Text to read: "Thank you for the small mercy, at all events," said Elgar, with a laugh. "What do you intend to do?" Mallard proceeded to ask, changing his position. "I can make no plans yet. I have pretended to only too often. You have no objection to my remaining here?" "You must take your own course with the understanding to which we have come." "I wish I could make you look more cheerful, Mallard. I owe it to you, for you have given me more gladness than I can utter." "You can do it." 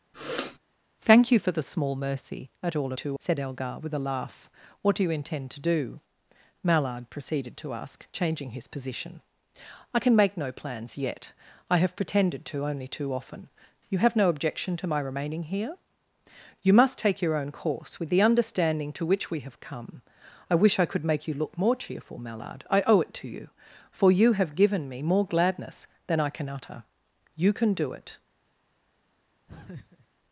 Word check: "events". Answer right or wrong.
wrong